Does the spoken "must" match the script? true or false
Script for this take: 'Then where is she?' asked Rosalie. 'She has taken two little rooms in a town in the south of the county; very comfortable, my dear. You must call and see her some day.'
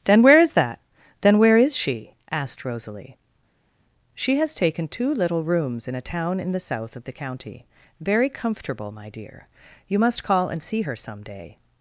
true